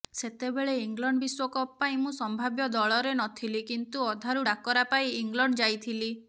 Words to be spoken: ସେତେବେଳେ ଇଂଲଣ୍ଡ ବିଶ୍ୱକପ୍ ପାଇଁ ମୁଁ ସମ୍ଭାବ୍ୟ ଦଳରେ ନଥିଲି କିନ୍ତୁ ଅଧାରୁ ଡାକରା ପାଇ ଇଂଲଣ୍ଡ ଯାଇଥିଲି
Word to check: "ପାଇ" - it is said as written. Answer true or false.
true